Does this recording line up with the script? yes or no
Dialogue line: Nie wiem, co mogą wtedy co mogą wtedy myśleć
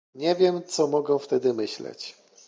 no